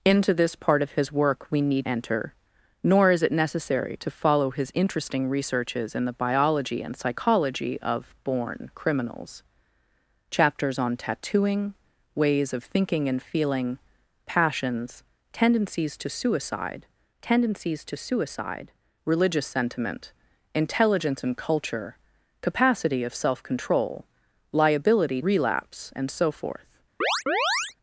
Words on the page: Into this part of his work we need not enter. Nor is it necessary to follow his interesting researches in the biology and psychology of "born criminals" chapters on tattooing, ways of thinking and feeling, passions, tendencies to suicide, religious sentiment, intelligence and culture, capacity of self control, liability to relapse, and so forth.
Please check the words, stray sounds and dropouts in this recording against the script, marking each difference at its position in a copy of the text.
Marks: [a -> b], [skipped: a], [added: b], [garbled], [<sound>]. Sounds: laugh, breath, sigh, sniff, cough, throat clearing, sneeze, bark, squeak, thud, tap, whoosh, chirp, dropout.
Into this part of his work we need [skipped: not] enter. Nor is it necessary to follow his interesting researches in the biology and psychology of "born criminals" chapters on tattooing, ways of thinking and feeling, passions, tendencies to suicide, [added: tendencies to suicide] religious sentiment, intelligence and culture, capacity of self control, liability [skipped: to] relapse, and so forth. [chirp]